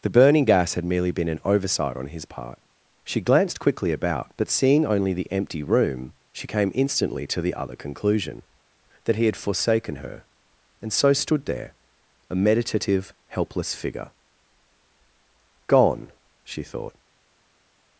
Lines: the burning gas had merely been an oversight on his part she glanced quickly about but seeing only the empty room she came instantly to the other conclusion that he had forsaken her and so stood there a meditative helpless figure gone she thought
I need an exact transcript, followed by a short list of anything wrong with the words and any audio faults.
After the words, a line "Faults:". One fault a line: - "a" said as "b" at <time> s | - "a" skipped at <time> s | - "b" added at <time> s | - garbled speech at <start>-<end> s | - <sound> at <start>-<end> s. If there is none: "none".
the burning gas had merely been an oversight on his part she glanced quickly about but seeing only the empty room she came instantly to the other conclusion that he had forsaken her and so stood there a meditative helpless figure gone she thought
Faults:
none